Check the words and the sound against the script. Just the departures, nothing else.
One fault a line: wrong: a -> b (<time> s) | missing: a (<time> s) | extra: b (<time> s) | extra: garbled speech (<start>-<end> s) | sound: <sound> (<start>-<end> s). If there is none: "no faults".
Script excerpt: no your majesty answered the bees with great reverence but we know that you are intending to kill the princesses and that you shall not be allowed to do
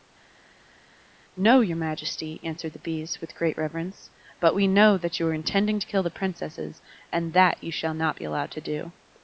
no faults